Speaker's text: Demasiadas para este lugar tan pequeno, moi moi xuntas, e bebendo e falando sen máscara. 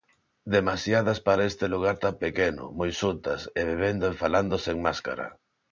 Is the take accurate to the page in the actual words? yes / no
no